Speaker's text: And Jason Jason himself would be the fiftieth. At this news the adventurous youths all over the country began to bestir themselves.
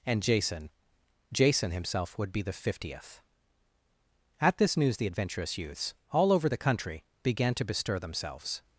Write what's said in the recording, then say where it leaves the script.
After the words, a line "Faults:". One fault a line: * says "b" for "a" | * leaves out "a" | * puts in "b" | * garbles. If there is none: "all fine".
And Jason Jason himself would be the fiftieth. At this news the adventurous youths all over the country began to bestir themselves.
Faults:
all fine